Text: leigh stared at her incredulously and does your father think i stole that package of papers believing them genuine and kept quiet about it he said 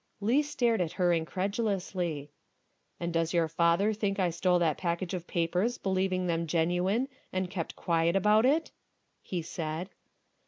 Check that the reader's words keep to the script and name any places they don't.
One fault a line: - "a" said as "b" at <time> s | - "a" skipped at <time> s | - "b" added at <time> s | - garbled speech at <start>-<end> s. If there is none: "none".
none